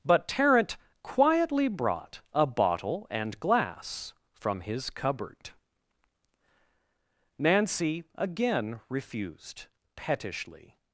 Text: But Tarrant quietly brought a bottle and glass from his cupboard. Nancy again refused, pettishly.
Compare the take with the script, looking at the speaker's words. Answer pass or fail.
pass